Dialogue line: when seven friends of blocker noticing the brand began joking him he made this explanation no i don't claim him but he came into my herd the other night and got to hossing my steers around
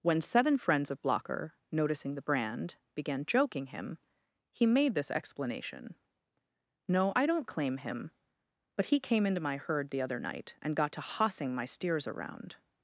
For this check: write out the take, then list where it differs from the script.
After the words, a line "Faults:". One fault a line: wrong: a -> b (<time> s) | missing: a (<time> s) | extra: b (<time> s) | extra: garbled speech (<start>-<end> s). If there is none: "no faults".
when seven friends of blocker noticing the brand began joking him he made this explanation no i don't claim him but he came into my herd the other night and got to hossing my steers around
Faults:
no faults